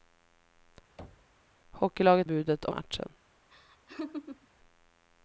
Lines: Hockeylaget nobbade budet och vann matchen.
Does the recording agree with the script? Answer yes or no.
no